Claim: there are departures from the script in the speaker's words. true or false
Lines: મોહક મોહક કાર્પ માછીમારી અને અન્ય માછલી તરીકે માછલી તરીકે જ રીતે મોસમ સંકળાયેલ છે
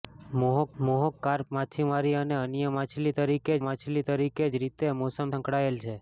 false